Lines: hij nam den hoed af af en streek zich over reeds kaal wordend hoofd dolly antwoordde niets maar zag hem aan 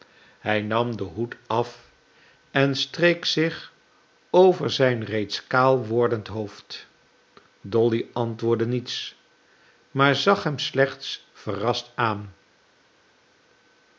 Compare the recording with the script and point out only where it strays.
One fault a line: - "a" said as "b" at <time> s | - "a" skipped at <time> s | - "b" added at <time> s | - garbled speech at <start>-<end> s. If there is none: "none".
- "af" skipped at 1.9 s
- "zijn" added at 4.7 s
- "slechts verrast" added at 10.6 s